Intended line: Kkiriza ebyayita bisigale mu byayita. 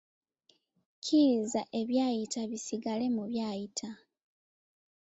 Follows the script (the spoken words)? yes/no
yes